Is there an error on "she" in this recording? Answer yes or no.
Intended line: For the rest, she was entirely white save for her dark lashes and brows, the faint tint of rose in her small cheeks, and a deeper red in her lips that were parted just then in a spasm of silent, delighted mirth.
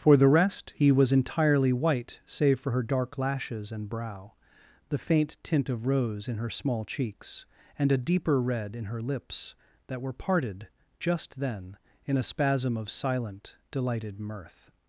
yes